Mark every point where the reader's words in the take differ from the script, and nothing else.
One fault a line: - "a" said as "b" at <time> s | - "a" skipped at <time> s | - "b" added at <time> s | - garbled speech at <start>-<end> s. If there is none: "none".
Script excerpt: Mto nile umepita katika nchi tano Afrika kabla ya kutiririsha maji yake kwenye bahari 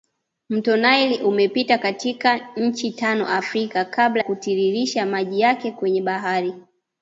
- "ya" skipped at 4.2 s